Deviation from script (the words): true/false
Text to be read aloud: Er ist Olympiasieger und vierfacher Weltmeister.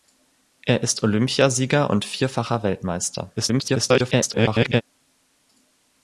true